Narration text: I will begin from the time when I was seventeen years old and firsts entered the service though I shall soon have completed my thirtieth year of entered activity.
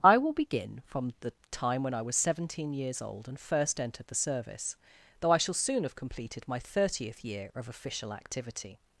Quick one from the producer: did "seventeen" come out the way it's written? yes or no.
yes